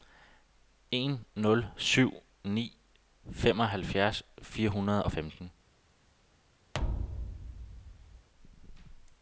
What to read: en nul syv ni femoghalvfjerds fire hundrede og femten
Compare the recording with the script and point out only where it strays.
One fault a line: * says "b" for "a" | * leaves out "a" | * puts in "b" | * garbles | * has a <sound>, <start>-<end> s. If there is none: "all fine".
* has a thud, 6.7-8.3 s